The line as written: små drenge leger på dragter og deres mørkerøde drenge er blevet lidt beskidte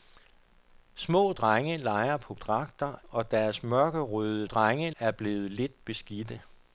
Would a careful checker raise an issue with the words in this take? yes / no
no